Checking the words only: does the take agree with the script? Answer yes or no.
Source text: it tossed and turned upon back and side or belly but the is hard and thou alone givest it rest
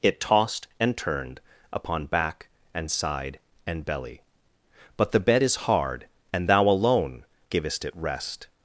no